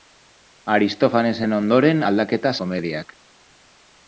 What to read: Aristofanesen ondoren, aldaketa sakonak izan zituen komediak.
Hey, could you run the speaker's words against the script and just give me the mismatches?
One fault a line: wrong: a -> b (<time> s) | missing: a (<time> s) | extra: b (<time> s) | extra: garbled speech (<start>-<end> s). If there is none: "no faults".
missing: sakonak izan zituen (2.5 s)